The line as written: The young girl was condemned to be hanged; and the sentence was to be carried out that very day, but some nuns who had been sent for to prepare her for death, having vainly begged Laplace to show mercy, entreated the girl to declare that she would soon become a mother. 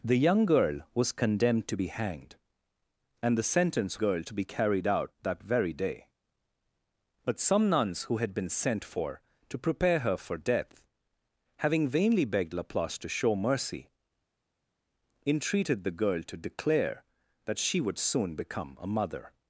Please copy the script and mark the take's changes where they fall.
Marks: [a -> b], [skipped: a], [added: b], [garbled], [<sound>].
The young girl was condemned to be hanged; and the sentence [was -> girl] to be carried out that very day, but some nuns who had been sent for to prepare her for death, having vainly begged Laplace to show mercy, entreated the girl to declare that she would soon become a mother.